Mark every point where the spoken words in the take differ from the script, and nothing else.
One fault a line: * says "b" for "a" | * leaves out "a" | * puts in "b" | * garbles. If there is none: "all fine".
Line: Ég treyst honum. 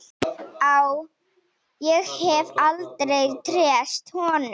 * puts in "hef aldrei"